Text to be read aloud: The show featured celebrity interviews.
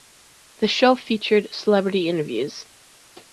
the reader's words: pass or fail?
pass